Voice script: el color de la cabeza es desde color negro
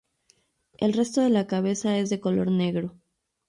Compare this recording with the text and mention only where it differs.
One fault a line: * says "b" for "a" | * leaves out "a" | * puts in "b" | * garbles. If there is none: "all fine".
* says "resto" for "color"
* says "de" for "desde"